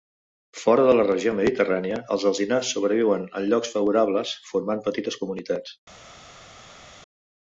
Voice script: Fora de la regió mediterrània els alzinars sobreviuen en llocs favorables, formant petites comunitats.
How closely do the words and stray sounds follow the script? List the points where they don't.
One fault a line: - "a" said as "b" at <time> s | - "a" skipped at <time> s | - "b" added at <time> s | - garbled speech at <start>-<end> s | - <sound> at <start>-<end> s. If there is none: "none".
none